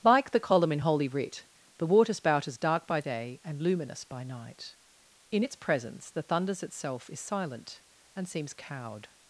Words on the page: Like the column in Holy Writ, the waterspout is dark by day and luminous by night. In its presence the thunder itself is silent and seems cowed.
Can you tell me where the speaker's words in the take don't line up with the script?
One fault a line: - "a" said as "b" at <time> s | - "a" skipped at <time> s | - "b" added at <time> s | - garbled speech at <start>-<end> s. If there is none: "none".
- "thunder" said as "thunders" at 6.2 s